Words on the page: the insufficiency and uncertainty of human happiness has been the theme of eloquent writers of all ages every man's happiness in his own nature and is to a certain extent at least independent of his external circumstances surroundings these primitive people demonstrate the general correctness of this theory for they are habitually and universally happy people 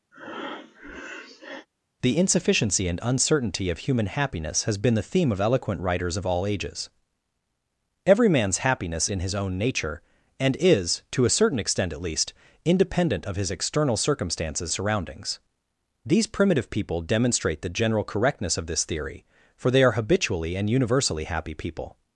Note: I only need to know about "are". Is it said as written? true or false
true